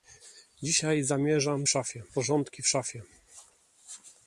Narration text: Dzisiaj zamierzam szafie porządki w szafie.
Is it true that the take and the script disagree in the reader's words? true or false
false